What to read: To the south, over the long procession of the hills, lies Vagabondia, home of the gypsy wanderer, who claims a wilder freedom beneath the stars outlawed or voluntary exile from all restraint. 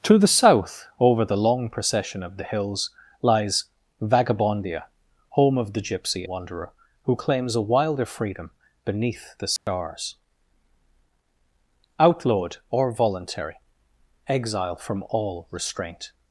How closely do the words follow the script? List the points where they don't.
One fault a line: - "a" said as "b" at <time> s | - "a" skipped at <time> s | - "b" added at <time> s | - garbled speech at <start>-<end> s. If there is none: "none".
none